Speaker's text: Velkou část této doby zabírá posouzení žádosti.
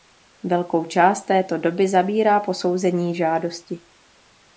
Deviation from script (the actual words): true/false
false